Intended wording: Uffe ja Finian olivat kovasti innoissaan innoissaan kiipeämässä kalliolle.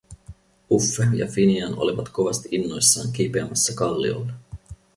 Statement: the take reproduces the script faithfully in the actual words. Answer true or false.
false